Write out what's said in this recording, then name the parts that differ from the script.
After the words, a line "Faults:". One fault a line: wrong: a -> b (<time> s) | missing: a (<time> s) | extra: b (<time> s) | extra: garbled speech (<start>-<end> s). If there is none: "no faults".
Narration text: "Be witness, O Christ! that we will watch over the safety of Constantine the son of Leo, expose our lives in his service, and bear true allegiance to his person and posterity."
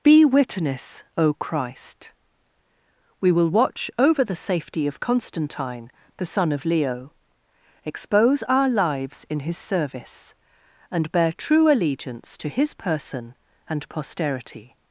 "Be witness, O Christ! we will watch over the safety of Constantine the son of Leo, expose our lives in his service, and bear true allegiance to his person and posterity."
Faults:
missing: that (2.1 s)